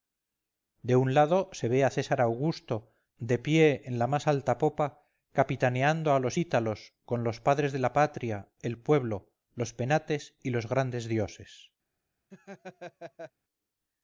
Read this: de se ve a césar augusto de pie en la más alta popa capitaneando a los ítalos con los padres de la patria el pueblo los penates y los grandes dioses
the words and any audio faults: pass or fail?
fail